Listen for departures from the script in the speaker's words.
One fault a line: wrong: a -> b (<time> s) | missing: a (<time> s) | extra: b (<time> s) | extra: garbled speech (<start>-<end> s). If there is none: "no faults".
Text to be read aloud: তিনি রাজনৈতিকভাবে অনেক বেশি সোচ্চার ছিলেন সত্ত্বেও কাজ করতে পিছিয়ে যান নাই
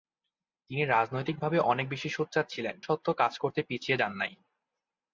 no faults